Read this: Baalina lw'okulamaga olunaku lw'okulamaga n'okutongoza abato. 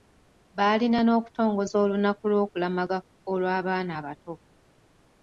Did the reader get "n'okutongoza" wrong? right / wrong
wrong